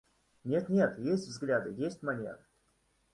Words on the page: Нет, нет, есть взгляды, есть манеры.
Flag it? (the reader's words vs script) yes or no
no